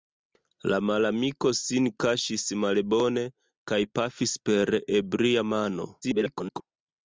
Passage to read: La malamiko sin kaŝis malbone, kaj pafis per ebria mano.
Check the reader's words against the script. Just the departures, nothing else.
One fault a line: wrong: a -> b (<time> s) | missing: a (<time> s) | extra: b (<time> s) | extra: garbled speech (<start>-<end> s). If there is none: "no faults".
extra: garbled speech (6.0-6.6 s)